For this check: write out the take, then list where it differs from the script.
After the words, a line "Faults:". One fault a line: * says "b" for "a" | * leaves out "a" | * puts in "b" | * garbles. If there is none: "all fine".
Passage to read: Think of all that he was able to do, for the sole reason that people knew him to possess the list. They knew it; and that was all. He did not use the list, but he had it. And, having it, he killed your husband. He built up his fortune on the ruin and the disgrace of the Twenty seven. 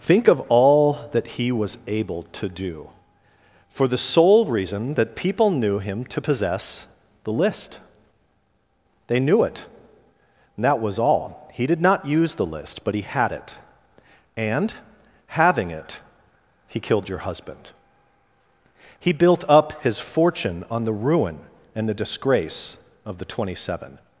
Think of all that he was able to do, for the sole reason that people knew him to possess the list. They knew it; and that was all. He did not use the list, but he had it. And, having it, he killed your husband. He built up his fortune on the ruin and the disgrace of the Twenty seven.
Faults:
all fine